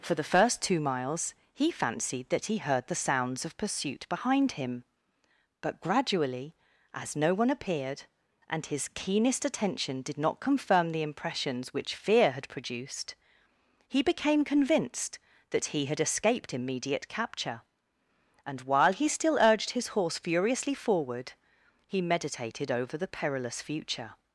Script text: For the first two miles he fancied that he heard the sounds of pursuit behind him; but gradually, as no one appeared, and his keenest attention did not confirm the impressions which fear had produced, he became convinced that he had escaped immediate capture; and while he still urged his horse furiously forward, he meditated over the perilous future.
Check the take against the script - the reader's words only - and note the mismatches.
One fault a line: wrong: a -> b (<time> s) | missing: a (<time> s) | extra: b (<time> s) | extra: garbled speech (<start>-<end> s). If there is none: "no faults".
no faults